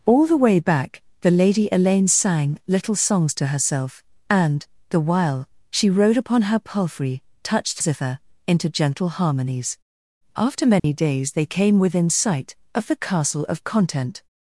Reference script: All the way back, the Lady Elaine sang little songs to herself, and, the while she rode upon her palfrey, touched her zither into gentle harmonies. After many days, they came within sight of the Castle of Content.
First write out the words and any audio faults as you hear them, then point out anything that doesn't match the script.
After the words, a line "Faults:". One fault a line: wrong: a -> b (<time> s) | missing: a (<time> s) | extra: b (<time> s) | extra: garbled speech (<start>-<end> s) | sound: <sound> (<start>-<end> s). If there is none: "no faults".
All the way back, the Lady Elaine sang little songs to herself, and, the while she rode upon her palfrey, touched zither into gentle harmonies. After many days, they came within sight of the Castle of Content.
Faults:
missing: her (7.8 s)
sound: dropout (10.8-10.8 s)